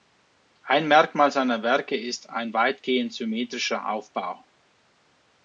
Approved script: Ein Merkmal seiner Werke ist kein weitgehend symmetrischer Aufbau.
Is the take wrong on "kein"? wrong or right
wrong